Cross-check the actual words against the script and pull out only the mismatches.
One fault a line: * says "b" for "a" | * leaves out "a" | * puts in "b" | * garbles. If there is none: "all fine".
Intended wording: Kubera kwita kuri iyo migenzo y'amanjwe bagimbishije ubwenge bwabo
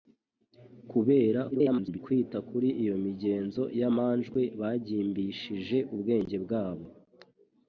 * garbles